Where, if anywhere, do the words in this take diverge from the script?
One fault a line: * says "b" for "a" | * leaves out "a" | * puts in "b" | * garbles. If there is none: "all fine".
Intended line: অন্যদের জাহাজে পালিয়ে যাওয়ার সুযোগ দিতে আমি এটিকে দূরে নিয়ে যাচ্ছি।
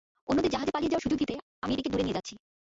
all fine